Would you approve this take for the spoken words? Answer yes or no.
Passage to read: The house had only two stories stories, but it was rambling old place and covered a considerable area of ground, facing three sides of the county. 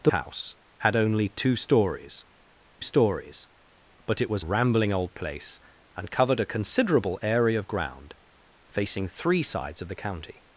yes